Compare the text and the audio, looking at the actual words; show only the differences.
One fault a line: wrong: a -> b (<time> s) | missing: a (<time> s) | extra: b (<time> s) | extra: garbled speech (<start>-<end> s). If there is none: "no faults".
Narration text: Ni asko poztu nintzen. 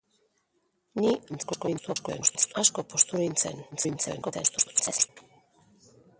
extra: garbled speech (1.3-2.5 s)
extra: garbled speech (3.7-5.1 s)